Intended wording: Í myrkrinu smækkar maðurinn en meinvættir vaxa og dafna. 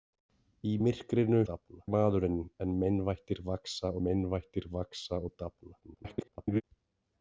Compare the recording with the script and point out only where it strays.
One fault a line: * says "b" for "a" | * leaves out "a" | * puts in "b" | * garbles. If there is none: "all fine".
* says "dafna" for "smækkar"
* puts in "meinvættir vaxa"
* garbles